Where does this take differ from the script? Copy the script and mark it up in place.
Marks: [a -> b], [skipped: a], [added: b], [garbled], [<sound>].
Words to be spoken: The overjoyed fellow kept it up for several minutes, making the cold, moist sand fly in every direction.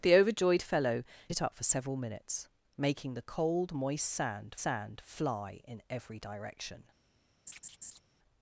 The overjoyed fellow [skipped: kept] it up for several minutes, making the cold, moist sand [added: sand] fly in every direction. [laugh]